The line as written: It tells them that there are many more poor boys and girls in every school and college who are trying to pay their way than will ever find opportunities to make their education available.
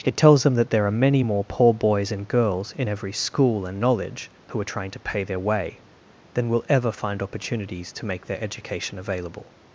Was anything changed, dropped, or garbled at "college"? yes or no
yes